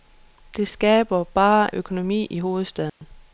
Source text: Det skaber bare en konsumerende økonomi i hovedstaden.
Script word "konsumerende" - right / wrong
wrong